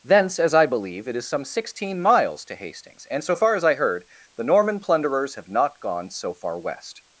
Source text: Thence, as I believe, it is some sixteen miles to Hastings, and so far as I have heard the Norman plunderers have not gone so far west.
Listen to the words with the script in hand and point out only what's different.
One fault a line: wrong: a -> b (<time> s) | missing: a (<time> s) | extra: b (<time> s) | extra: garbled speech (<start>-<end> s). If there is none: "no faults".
missing: have (3.8 s)